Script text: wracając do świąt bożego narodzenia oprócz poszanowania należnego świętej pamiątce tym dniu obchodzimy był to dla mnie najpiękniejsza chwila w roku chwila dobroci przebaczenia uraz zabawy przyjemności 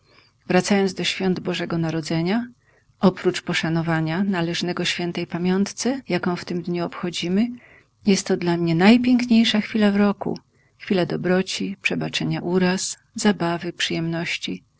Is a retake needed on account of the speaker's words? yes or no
yes